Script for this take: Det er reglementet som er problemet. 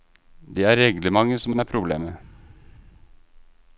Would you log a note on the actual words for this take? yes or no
yes